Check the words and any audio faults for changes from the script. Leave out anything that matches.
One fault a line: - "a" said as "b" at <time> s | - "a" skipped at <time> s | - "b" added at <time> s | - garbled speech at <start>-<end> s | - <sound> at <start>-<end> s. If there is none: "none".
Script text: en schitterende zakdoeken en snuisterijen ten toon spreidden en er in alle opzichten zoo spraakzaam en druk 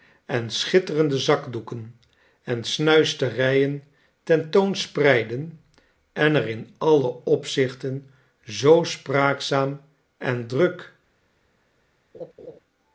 - laugh at 12.1-12.6 s